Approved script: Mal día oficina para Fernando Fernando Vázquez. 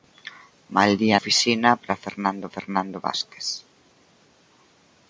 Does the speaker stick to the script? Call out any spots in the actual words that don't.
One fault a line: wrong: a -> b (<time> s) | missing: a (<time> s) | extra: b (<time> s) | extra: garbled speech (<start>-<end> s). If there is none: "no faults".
no faults